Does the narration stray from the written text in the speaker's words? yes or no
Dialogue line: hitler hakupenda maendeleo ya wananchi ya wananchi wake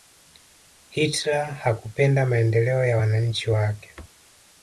yes